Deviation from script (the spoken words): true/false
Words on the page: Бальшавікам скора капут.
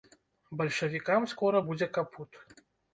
true